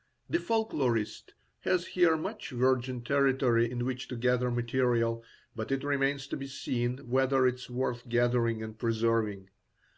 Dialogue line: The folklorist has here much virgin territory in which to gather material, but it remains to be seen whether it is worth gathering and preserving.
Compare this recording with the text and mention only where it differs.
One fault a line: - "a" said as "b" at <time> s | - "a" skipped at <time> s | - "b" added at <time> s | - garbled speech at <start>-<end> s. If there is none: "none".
none